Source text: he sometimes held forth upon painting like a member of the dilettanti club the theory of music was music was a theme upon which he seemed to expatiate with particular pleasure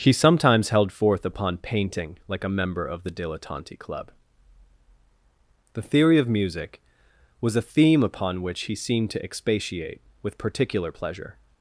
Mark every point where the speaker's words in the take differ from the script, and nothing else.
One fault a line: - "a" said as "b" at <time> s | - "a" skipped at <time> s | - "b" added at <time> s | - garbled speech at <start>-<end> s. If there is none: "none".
- "music was" skipped at 7.5 s